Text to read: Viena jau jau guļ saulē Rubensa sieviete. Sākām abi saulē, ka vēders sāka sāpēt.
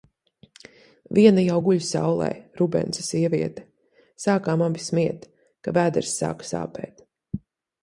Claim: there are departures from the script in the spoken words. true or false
true